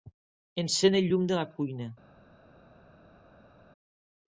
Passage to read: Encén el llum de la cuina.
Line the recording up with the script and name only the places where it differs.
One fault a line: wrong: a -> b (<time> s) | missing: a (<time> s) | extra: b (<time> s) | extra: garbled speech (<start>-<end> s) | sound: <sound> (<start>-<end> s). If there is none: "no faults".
no faults